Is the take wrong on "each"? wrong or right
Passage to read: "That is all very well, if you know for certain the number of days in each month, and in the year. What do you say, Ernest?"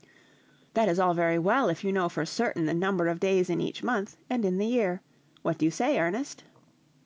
right